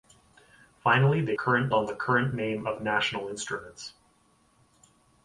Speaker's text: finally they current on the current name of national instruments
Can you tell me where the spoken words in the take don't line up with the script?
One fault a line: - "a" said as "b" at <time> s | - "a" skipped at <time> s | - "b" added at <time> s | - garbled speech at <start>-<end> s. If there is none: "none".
none